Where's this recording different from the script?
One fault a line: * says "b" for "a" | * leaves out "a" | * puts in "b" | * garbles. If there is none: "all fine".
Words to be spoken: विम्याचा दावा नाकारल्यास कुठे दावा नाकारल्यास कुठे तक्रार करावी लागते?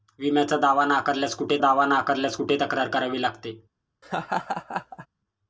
all fine